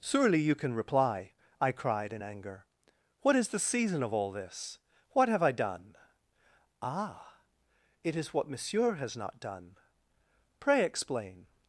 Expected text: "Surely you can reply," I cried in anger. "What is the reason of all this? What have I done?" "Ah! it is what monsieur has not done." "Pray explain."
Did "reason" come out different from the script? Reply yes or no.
yes